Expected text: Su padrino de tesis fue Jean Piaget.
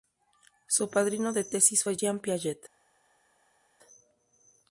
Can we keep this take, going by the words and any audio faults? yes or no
yes